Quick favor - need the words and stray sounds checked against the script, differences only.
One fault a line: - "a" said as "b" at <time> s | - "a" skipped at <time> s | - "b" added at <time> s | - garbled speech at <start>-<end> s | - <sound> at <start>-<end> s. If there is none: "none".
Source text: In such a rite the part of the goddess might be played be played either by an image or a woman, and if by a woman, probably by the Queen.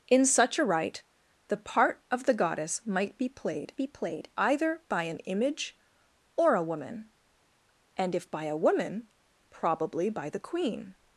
none